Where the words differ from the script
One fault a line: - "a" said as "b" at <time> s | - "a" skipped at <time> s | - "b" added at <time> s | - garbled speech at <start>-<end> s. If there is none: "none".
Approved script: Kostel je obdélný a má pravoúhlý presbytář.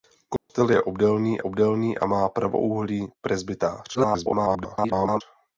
- "obdélný" added at 1.4 s
- garbled speech at 3.9-5.2 s